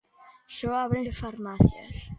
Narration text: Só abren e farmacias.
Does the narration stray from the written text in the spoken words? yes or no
no